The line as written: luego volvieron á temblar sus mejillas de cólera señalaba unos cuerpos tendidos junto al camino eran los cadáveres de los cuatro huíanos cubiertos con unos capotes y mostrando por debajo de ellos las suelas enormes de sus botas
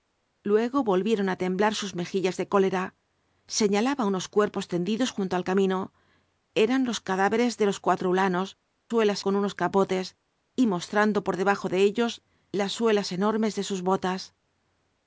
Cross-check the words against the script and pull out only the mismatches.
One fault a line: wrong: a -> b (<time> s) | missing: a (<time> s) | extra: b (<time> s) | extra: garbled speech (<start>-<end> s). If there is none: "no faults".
wrong: cubiertos -> suelas (8.9 s)